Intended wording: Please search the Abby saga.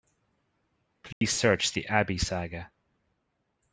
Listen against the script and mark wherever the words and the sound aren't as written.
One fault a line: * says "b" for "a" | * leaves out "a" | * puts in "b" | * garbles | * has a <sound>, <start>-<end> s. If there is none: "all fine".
* has a dropout, 1.1-1.2 s